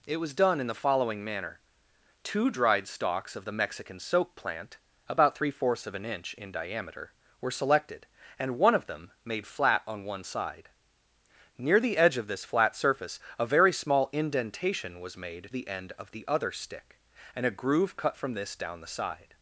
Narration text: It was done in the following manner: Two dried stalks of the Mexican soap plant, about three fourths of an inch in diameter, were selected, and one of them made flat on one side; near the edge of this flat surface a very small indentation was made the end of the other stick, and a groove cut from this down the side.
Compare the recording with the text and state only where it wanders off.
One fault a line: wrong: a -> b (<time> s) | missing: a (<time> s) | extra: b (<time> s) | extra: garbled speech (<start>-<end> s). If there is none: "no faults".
no faults